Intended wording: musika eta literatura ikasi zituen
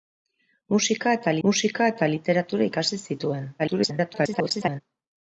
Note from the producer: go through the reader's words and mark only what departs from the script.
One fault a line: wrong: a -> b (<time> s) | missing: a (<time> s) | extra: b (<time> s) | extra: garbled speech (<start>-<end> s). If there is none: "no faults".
extra: musika eta (1.5 s)
extra: garbled speech (3.6-4.8 s)